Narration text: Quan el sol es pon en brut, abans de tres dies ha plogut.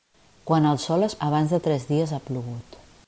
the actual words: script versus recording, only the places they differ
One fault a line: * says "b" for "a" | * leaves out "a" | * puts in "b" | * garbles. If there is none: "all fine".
* leaves out "pon en brut"